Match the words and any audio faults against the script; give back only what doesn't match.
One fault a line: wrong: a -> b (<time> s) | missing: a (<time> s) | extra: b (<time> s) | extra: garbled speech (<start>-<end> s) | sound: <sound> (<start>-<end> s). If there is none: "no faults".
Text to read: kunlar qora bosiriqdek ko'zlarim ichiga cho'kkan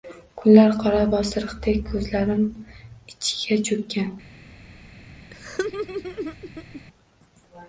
sound: laugh (5.3-6.8 s)